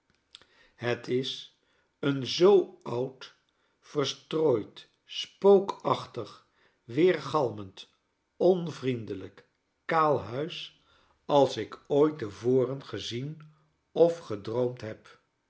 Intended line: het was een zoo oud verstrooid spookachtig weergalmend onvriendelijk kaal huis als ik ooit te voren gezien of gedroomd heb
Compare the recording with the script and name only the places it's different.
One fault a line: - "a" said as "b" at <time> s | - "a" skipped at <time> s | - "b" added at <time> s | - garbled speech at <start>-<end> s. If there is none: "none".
- "was" said as "is" at 1.1 s